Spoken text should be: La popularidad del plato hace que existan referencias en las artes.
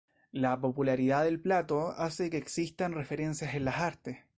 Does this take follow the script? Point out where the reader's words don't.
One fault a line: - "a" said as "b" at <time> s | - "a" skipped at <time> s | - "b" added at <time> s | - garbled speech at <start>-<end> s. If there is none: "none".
none